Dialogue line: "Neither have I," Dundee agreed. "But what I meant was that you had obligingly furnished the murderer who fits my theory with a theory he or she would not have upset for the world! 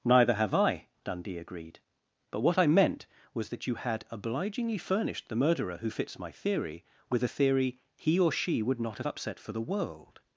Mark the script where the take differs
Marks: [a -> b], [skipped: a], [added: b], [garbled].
"Neither have I," Dundee agreed. "But what I meant was that you had obligingly furnished the murderer who fits my theory with a theory he or she would not have upset for the world!